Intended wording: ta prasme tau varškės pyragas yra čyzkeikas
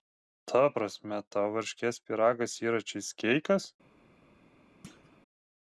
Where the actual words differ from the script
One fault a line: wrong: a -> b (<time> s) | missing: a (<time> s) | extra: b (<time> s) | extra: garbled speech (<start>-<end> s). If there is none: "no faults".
no faults